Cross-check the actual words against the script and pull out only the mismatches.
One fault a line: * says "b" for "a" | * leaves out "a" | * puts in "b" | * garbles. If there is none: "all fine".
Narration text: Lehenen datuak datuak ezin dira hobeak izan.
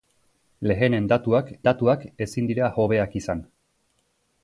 all fine